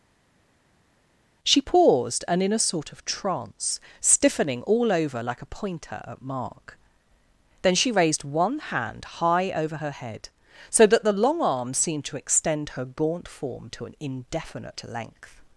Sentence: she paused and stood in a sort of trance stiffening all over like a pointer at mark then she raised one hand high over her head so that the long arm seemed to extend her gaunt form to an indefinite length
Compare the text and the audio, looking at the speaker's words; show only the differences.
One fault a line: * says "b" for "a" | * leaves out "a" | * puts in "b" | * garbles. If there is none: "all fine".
* leaves out "stood"